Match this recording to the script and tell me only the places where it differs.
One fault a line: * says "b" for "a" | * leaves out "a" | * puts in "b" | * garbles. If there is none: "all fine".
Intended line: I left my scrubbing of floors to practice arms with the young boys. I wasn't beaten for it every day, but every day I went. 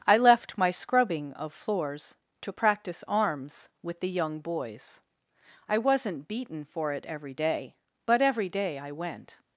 all fine